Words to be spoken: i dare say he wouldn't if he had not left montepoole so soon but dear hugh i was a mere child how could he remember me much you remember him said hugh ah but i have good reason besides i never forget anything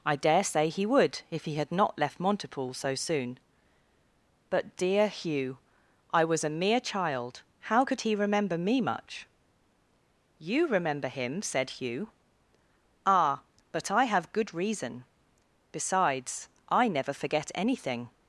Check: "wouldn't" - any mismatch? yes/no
yes